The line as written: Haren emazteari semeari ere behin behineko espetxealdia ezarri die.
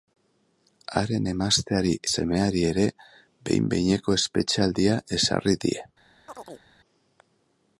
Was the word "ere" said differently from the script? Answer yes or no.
no